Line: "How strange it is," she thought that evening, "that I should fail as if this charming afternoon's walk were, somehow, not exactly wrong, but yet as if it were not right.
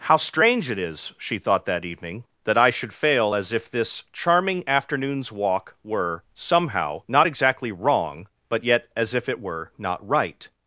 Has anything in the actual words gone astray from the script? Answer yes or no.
no